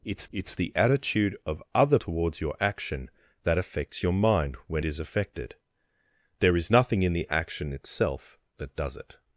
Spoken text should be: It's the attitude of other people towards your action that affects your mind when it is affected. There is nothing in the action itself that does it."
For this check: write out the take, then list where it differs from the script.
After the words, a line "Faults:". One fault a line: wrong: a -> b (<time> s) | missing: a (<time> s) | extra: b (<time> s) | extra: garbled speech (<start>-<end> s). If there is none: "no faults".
It's it's the attitude of other towards your action that affects your mind when is affected. There is nothing in the action itself that does it."
Faults:
extra: it's (0.3 s)
missing: people (2.0 s)
missing: it (4.8 s)